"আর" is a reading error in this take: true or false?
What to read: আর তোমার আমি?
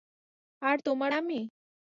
false